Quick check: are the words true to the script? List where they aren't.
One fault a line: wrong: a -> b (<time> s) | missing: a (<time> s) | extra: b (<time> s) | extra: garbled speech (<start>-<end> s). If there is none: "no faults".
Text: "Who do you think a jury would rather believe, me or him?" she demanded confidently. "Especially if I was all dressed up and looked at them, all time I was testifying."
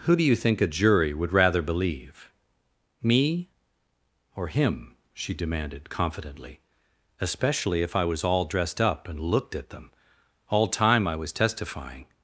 no faults